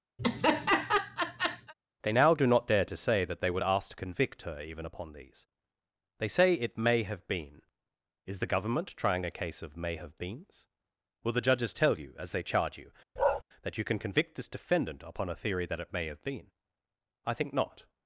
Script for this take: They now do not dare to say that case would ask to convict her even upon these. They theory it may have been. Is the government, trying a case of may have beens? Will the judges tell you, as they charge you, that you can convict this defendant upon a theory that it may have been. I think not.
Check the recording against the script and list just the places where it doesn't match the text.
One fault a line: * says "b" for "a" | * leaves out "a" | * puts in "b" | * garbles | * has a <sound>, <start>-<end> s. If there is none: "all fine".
* has a laugh, 0.2-1.7 s
* says "they" for "case"
* says "say" for "theory"
* has a bark, 13.2-13.4 s